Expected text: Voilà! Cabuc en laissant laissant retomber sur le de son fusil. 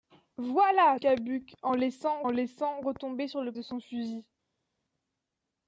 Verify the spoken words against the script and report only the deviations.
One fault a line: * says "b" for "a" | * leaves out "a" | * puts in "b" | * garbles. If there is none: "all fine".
all fine